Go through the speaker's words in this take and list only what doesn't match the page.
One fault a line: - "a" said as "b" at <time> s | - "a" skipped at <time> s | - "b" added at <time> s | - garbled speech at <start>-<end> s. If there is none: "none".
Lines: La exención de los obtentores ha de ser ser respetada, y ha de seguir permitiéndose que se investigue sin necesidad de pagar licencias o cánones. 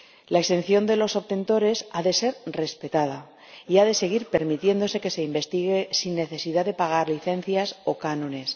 - "ser" skipped at 2.4 s